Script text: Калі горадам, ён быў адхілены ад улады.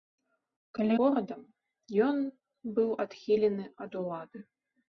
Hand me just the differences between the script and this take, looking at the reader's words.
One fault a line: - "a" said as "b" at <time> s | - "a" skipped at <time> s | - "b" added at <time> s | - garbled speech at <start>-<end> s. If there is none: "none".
none